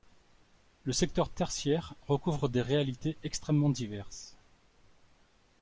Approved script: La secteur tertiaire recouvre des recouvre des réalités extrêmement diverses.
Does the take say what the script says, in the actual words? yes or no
no